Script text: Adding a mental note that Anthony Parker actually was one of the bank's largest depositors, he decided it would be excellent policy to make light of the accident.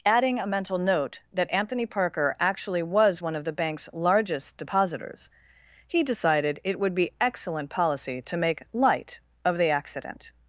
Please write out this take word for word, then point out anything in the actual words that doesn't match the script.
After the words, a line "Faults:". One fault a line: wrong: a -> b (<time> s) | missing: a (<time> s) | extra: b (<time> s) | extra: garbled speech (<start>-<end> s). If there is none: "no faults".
Adding a mental note that Anthony Parker actually was one of the bank's largest depositors, he decided it would be excellent policy to make light of the accident.
Faults:
no faults